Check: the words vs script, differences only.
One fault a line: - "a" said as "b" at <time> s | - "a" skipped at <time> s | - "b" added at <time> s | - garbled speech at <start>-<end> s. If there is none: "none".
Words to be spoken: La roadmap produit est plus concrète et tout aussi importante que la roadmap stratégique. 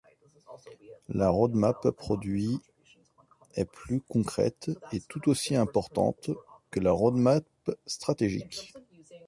none